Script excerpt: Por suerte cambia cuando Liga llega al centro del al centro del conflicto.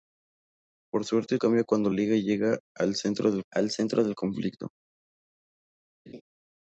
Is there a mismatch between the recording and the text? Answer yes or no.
no